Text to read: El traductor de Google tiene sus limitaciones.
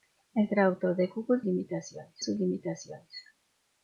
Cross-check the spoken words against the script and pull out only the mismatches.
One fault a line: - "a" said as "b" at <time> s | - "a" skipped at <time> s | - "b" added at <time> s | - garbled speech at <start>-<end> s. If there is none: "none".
- "tiene" said as "limitaciones" at 1.4 s